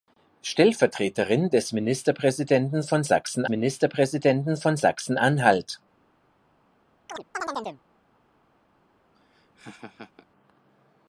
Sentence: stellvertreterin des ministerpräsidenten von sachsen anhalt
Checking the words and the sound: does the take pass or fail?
fail